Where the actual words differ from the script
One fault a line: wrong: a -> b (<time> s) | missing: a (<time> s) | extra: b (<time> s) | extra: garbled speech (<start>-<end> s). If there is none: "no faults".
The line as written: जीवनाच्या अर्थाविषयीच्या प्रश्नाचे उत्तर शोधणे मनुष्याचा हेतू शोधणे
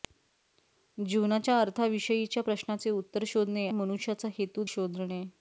no faults